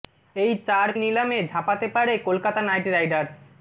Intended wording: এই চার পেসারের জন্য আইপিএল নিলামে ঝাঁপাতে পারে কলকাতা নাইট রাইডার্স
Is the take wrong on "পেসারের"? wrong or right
wrong